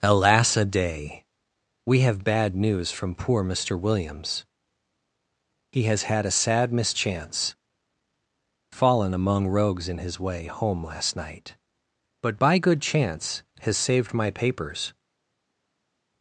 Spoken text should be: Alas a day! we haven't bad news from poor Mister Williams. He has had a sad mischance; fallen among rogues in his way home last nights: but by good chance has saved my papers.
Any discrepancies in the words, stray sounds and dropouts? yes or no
yes